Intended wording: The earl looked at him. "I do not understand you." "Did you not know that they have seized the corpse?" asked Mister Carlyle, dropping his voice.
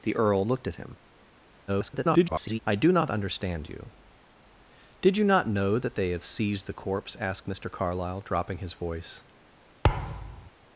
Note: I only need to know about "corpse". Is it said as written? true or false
true